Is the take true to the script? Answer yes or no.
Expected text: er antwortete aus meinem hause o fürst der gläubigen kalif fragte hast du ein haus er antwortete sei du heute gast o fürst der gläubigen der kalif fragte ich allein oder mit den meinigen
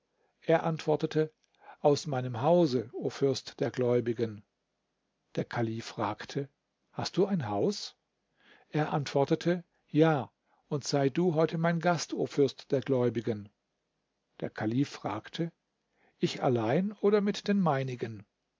no